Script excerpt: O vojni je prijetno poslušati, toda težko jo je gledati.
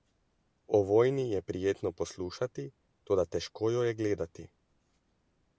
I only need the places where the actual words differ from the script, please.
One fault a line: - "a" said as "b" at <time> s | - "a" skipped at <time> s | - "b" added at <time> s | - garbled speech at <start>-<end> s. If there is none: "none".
none